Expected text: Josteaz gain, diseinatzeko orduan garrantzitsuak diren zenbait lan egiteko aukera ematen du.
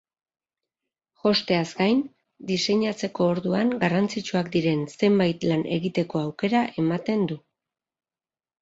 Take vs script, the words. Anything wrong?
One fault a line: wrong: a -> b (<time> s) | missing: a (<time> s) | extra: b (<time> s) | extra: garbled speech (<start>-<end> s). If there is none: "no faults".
no faults